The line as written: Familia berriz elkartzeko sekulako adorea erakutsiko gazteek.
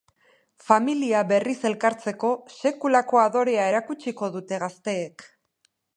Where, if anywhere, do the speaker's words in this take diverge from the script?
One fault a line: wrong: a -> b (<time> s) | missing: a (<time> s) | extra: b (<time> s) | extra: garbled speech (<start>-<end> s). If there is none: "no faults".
extra: dute (4.4 s)